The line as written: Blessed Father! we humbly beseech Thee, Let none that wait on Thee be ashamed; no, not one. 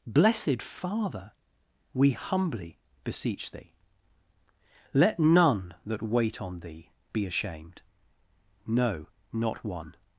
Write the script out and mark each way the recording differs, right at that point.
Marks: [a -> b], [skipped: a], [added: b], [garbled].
Blessed Father! we humbly beseech Thee, Let none that wait on Thee be ashamed; no, not one.